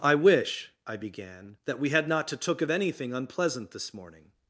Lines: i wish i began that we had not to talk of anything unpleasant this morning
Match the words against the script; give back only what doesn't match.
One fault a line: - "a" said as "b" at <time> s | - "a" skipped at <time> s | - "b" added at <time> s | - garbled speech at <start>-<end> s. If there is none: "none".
- "talk" said as "took" at 2.4 s